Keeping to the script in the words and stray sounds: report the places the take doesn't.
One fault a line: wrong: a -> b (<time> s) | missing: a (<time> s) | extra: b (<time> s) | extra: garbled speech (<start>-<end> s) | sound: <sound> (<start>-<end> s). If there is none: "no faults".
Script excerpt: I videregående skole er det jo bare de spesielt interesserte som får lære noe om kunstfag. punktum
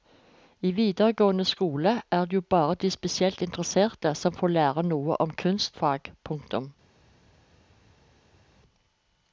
no faults